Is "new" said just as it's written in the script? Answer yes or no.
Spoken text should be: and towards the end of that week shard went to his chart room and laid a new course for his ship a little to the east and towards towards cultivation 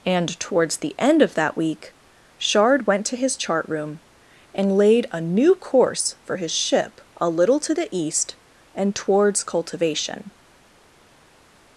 yes